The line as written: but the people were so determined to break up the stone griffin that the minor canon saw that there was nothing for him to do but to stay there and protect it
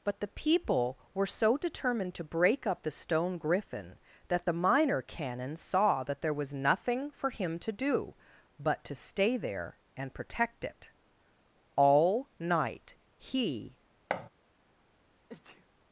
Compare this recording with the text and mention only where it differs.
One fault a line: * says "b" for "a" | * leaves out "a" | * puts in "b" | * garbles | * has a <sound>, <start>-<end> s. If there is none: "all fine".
* puts in "all night he"
* has a thud, 14.1-14.3 s
* has a sneeze, 15.3-15.7 s